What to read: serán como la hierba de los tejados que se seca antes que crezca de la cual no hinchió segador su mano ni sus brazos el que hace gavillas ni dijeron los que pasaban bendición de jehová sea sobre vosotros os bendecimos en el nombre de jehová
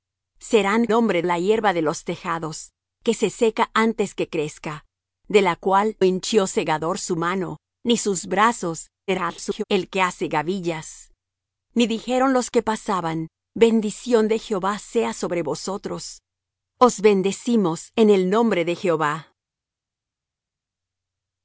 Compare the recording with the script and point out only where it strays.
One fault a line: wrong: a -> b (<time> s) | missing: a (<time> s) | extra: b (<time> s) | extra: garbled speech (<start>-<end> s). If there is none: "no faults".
wrong: como -> nombre (0.9 s)
missing: no (6.0 s)
extra: garbled speech (9.1-9.6 s)